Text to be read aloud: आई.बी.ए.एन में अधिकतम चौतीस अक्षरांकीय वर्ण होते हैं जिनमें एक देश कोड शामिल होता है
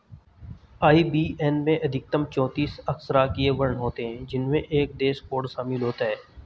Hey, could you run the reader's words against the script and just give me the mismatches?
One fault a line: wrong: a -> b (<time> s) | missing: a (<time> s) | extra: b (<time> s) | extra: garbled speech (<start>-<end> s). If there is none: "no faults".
no faults